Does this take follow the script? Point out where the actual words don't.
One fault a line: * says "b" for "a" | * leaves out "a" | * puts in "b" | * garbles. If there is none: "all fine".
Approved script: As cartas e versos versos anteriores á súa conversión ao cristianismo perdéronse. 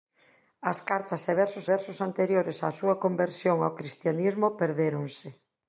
all fine